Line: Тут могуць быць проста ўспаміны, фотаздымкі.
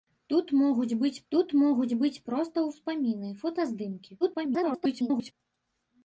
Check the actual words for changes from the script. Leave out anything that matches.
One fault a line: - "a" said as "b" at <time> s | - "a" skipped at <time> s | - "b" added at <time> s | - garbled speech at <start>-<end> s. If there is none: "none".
- "тут могуць быць" added at 1.3 s
- garbled speech at 4.2-5.3 s